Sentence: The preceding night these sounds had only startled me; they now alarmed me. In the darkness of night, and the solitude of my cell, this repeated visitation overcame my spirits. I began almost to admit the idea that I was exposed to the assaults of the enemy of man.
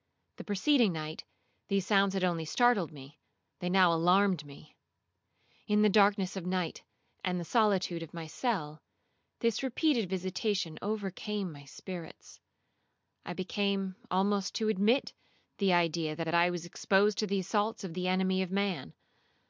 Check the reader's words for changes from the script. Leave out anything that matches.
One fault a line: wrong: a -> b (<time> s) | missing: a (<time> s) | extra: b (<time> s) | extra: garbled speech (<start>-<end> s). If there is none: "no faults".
extra: that (16.2 s)